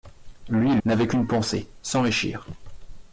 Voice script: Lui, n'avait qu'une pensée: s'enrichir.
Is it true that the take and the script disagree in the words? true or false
false